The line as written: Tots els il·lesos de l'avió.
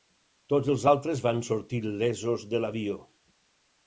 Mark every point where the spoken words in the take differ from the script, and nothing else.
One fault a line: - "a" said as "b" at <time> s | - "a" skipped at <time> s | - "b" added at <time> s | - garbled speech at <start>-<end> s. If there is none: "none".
- "altres van sortir" added at 0.9 s